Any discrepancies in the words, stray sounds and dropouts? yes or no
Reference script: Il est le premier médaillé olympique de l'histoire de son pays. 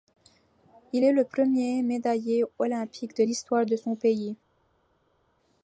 no